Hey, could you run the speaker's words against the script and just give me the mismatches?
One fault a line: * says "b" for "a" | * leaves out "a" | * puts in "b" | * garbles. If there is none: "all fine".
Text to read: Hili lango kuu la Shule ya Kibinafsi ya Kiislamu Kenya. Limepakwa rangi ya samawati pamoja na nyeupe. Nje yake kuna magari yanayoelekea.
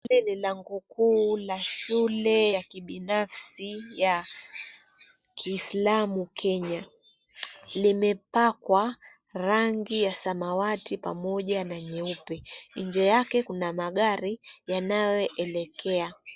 * puts in "ni"